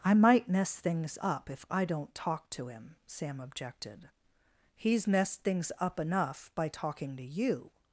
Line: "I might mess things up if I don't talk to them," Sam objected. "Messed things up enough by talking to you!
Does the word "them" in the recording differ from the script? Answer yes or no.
yes